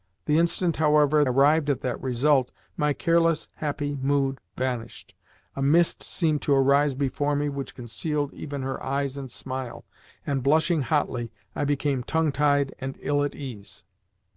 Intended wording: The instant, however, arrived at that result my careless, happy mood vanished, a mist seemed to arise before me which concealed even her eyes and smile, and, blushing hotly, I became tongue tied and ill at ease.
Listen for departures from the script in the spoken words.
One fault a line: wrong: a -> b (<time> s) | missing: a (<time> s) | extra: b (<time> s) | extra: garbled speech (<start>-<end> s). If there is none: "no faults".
no faults